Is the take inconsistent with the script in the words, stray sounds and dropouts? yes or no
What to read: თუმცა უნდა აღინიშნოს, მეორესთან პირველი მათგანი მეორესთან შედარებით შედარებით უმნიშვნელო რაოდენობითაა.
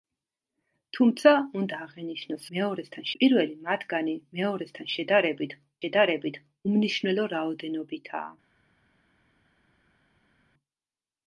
no